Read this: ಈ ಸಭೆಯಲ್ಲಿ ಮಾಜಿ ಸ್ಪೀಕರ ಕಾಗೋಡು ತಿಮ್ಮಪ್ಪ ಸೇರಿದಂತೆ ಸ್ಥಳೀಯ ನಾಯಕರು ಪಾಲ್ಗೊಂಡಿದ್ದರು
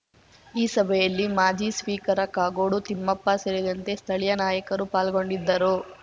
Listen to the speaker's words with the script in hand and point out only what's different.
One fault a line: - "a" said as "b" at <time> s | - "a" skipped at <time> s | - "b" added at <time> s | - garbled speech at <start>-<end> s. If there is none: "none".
none